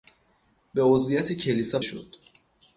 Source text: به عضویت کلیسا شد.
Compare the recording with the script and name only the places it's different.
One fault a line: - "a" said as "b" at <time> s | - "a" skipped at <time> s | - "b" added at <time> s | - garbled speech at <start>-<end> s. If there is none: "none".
none